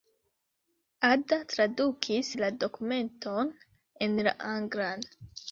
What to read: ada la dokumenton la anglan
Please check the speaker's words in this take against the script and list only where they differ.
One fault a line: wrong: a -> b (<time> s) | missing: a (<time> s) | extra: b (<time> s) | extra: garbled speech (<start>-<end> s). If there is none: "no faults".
extra: tradukis (1.5 s)
extra: en (4.1 s)